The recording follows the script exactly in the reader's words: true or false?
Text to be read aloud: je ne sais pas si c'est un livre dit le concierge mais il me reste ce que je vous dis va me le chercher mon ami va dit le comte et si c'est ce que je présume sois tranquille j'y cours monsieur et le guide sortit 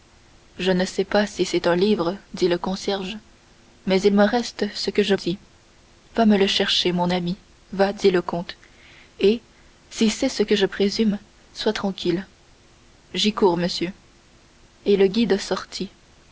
false